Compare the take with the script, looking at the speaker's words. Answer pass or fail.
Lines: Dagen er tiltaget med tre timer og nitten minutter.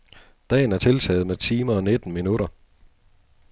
fail